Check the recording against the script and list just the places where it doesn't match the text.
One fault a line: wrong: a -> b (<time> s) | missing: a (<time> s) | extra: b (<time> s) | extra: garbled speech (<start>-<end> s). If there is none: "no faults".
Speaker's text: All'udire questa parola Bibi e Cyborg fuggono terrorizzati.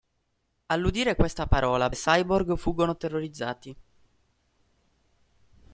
missing: Bibi (1.9 s)